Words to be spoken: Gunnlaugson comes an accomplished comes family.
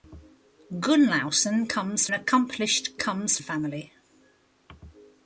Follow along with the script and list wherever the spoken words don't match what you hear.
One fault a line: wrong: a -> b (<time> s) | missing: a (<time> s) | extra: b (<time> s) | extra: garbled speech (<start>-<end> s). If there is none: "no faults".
no faults